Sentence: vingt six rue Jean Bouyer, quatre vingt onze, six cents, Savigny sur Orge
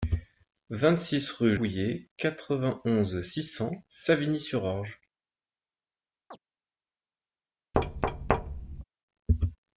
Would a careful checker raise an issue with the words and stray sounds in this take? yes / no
yes